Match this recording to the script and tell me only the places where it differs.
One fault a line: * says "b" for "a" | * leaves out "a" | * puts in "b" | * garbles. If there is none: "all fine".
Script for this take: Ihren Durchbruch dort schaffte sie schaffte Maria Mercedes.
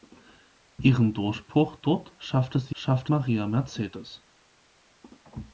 all fine